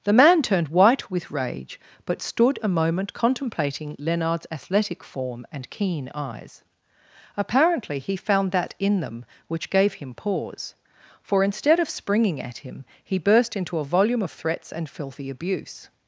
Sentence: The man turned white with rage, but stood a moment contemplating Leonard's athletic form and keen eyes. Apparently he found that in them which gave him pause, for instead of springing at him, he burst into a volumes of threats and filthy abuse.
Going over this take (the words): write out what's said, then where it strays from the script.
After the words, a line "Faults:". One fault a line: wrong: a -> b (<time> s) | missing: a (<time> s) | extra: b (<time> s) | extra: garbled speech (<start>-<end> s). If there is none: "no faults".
The man turned white with rage, but stood a moment contemplating Leonard's athletic form and keen eyes. Apparently he found that in them which gave him pause, for instead of springing at him, he burst into a volume of threats and filthy abuse.
Faults:
wrong: volumes -> volume (13.8 s)